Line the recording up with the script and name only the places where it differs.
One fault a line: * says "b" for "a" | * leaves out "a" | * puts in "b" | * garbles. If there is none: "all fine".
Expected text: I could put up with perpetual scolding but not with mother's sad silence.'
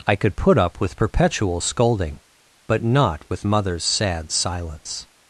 all fine